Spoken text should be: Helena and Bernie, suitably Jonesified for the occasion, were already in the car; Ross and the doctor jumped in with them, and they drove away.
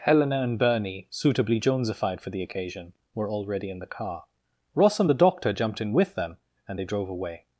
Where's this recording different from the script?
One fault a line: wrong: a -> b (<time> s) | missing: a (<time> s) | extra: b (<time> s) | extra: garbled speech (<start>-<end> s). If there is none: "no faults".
no faults